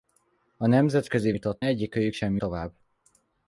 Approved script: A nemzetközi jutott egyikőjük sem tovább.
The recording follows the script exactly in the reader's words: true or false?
true